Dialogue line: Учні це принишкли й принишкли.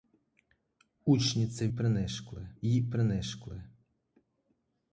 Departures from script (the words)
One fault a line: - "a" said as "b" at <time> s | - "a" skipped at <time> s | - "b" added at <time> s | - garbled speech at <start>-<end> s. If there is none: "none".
none